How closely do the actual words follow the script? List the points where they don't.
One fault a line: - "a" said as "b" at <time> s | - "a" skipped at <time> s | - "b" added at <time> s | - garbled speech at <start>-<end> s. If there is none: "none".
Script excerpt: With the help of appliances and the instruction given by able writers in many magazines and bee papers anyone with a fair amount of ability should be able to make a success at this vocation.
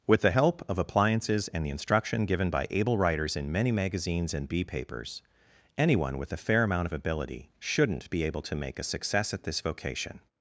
- "should" said as "shouldn't" at 7.6 s